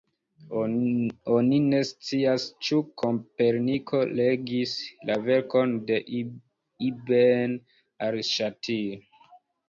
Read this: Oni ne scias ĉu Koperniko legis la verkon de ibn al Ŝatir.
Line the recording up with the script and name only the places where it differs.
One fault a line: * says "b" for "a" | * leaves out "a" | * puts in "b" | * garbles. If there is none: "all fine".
all fine